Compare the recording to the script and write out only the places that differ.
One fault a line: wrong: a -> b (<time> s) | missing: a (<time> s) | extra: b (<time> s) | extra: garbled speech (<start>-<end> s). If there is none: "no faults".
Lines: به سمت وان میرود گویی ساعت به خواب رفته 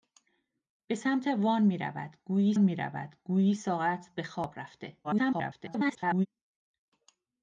extra: میرود گویی (2.6 s)
extra: garbled speech (5.0-6.3 s)